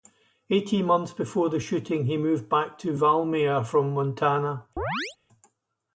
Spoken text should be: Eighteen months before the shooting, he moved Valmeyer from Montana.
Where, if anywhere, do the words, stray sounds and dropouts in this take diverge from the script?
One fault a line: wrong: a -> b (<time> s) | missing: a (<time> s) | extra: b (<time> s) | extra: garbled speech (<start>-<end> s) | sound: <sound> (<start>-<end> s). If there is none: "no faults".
extra: back to (2.5 s)
sound: chirp (4.8-5.2 s)